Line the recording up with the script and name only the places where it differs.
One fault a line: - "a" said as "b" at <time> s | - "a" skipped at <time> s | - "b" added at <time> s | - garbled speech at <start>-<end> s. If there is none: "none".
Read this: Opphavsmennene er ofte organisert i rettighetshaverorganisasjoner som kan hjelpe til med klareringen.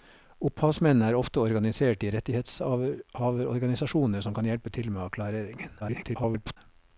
- garbled speech at 5.8-6.6 s